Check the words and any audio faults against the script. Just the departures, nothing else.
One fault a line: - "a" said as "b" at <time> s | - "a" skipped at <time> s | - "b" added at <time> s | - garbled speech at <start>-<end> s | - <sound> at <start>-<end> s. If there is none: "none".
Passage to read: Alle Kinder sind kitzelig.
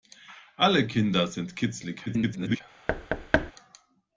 - garbled speech at 2.1-2.6 s
- thud at 2.9-3.5 s